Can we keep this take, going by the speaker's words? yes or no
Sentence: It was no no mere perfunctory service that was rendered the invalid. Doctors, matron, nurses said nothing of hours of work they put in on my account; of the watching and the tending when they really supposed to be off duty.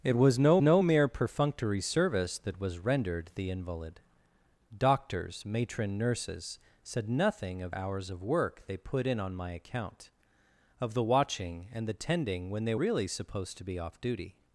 yes